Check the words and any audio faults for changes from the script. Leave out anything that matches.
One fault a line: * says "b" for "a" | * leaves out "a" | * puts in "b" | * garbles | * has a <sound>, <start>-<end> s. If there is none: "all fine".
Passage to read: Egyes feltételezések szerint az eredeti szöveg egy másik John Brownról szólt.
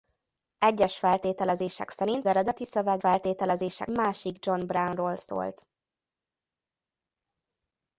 * leaves out "az"
* says "feltételezések" for "egy"